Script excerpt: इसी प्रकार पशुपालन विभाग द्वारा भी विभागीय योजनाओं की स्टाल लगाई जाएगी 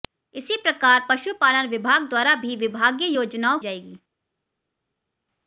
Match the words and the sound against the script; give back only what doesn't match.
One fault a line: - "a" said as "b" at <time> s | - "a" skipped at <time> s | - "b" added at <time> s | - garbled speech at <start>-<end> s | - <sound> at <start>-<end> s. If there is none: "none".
- "की स्टाल लगाई" skipped at 3.6 s